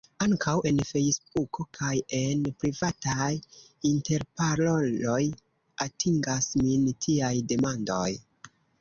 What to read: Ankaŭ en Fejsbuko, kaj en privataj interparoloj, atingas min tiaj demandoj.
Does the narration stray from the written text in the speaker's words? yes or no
no